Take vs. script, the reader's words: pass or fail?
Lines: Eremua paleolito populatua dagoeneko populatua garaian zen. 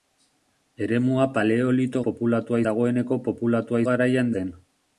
pass